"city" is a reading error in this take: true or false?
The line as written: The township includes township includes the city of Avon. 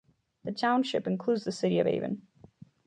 false